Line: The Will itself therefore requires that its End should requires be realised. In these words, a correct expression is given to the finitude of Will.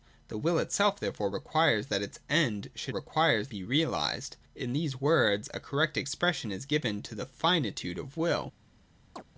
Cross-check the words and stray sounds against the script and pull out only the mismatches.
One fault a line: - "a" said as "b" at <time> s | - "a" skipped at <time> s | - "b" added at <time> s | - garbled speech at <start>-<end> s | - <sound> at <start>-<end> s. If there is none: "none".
- chirp at 9.2-9.2 s